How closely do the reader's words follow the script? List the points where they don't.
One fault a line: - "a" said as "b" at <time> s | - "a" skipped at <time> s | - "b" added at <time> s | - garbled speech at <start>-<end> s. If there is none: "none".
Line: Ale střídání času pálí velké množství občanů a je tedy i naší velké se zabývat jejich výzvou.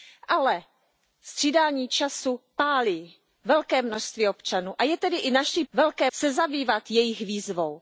none